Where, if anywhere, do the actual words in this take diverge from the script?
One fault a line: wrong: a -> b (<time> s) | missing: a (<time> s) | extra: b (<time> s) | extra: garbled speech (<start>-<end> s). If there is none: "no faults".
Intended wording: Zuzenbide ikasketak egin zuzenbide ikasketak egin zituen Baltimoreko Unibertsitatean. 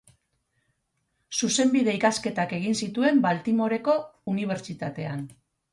missing: zuzenbide ikasketak egin (2.8 s)